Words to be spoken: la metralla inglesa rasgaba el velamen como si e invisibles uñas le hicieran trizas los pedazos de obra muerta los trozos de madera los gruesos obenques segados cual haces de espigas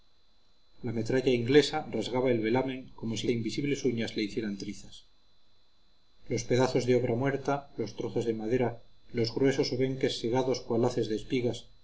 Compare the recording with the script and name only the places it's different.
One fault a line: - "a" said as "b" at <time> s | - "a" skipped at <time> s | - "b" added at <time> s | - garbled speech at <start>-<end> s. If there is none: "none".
none